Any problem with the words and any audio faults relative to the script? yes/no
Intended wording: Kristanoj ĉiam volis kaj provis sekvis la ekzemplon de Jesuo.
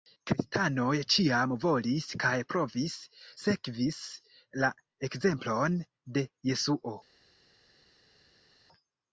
no